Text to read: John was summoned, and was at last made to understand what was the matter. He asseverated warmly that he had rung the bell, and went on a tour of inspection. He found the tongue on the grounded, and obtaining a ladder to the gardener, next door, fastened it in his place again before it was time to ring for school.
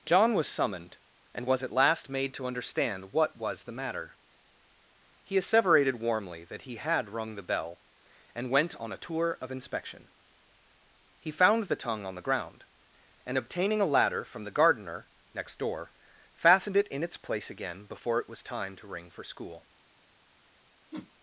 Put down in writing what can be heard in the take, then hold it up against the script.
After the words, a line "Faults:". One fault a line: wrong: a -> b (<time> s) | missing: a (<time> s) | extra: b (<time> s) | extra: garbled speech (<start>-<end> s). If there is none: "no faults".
John was summoned, and was at last made to understand what was the matter. He asseverated warmly that he had rung the bell, and went on a tour of inspection. He found the tongue on the ground, and obtaining a ladder from the gardener, next door, fastened it in its place again before it was time to ring for school.
Faults:
wrong: grounded -> ground (12.2 s)
wrong: to -> from (14.2 s)
wrong: his -> its (17.0 s)